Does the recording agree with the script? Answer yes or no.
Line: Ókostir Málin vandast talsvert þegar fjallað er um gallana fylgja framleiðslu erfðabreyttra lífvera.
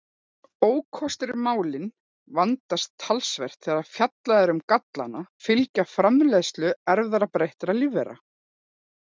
yes